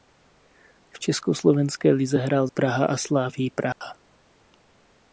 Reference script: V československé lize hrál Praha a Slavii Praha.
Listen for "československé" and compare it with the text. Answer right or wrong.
right